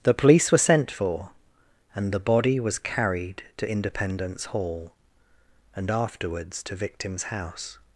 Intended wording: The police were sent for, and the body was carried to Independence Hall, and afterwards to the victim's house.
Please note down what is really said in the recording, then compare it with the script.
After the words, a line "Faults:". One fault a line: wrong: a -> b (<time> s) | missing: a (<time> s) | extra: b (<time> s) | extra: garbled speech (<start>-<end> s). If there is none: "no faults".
The police were sent for, and the body was carried to Independence Hall, and afterwards to victim's house.
Faults:
missing: the (6.7 s)